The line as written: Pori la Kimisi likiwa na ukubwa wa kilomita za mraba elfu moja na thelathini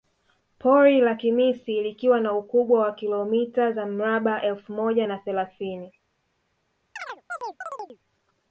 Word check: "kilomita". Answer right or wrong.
right